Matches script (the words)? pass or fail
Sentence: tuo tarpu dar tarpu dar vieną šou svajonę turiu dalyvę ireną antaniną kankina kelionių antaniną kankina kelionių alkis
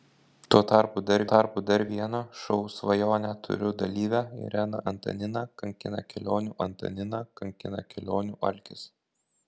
pass